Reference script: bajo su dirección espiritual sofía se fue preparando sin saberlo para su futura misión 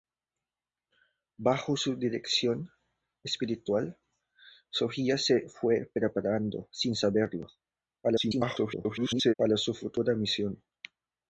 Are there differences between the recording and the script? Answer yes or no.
yes